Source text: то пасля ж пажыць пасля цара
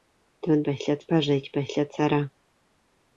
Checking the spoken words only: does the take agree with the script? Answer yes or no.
yes